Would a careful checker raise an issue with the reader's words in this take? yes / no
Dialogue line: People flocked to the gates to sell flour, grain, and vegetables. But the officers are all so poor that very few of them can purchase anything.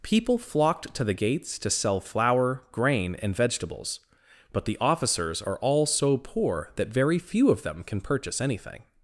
no